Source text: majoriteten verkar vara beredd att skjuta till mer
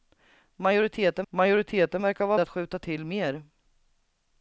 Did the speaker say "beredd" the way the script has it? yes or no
no